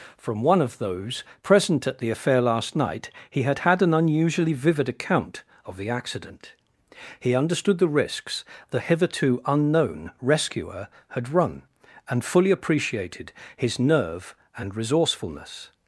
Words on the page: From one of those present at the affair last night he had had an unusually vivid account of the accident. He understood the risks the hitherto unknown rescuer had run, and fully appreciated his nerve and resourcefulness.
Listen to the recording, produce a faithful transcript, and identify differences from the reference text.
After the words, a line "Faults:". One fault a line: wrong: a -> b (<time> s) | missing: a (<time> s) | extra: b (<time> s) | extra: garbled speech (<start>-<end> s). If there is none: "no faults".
From one of those present at the affair last night he had had an unusually vivid account of the accident. He understood the risks the hitherto unknown rescuer had run, and fully appreciated his nerve and resourcefulness.
Faults:
no faults